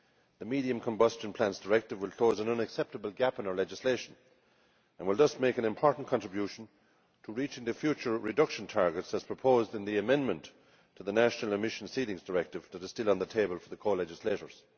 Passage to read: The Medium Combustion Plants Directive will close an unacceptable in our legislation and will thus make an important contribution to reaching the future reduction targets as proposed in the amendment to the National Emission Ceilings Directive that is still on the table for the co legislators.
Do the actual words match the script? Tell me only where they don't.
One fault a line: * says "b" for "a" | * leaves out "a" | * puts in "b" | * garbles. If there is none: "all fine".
* puts in "gap"